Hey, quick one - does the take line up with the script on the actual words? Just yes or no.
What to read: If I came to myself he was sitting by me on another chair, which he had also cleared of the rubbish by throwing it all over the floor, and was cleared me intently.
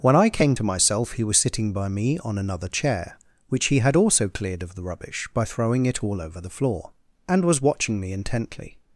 no